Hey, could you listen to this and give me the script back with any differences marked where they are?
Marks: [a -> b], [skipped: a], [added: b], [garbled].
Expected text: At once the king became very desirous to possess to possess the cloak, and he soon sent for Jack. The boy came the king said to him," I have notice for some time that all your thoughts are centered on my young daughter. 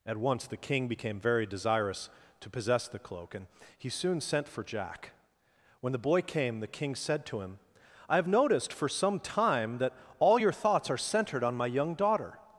At once the king became very desirous to possess [skipped: to possess] the cloak, and he soon sent for Jack. [added: When] The boy came the king said to him," I have [notice -> noticed] for some time that all your thoughts are centered on my young daughter.